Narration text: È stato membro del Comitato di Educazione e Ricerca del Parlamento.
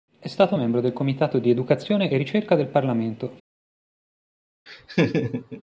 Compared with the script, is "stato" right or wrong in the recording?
right